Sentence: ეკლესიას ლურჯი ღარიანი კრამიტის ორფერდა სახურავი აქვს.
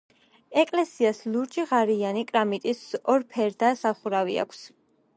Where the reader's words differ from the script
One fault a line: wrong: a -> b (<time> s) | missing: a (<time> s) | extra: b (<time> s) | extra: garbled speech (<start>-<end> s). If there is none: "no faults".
no faults